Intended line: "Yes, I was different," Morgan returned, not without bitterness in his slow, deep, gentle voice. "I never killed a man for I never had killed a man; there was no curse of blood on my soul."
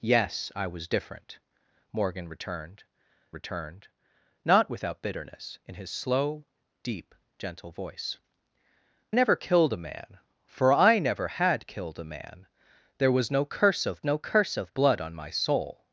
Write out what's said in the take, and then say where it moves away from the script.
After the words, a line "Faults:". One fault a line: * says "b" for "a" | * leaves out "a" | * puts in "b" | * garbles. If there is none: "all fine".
"Yes, I was different," Morgan returned returned, not without bitterness in his slow, deep, gentle voice. "never killed a man for I never had killed a man; there was no curse of no curse of blood on my soul."
Faults:
* puts in "returned"
* leaves out "I"
* puts in "no curse of"